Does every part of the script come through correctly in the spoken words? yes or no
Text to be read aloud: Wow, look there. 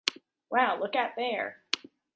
no